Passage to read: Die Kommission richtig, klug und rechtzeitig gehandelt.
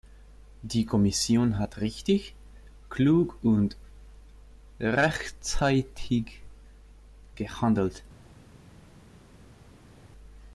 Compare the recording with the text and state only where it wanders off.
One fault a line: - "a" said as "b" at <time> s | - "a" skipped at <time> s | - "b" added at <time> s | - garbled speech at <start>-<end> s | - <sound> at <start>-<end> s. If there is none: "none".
- "hat" added at 1.6 s